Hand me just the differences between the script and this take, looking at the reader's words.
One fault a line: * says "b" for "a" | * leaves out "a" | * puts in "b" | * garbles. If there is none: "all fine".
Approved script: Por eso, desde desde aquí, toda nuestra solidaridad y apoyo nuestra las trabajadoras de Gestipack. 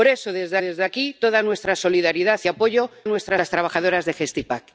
all fine